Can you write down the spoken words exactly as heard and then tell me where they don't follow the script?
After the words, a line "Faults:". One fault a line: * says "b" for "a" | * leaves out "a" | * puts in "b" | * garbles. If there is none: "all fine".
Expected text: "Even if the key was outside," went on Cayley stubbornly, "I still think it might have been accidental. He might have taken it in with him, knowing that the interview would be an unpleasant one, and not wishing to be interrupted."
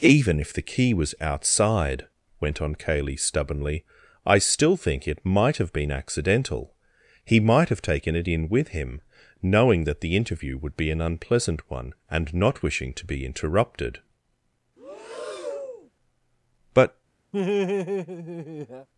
"Even if the key was outside," went on Cayley stubbornly, "I still think it might have been accidental. He might have taken it in with him, knowing that the interview would be an unpleasant one, and not wishing to be interrupted." "But
Faults:
* puts in "But"